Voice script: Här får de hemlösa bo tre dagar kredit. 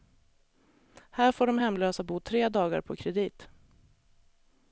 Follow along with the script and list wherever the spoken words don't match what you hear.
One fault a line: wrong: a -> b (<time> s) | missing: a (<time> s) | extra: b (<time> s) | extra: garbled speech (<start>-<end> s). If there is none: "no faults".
extra: på (2.8 s)